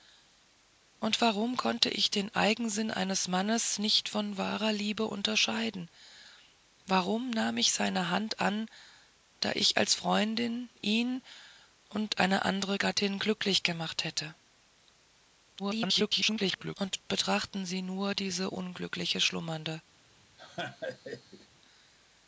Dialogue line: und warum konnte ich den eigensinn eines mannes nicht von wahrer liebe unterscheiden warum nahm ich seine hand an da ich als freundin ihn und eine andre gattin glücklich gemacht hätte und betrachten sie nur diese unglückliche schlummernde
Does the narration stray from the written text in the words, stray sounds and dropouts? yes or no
yes